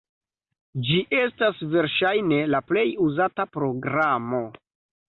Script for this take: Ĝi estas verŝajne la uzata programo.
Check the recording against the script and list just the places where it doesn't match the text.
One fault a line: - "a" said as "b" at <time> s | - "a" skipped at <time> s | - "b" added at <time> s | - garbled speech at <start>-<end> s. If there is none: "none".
- "plej" added at 2.7 s